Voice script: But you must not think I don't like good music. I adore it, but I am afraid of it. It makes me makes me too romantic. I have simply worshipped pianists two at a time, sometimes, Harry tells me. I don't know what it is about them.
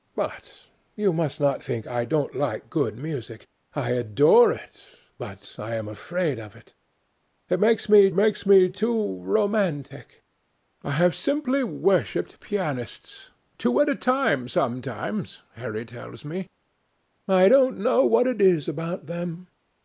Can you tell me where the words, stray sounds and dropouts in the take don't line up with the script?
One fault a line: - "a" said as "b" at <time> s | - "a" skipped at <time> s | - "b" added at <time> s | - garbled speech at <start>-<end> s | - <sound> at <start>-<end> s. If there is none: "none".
none